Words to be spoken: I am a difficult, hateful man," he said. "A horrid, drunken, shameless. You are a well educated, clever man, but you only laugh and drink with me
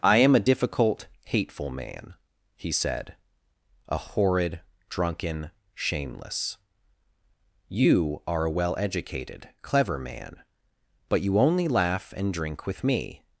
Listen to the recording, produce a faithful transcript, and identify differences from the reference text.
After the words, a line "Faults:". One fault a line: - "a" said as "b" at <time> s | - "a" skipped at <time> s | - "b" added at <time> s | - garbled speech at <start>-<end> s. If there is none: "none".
I am a difficult, hateful man," he said. "A horrid, drunken, shameless. You are a well educated, clever man, but you only laugh and drink with me
Faults:
none